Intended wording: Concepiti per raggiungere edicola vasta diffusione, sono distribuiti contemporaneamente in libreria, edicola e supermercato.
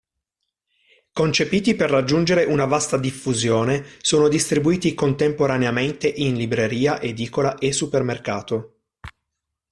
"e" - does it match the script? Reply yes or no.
yes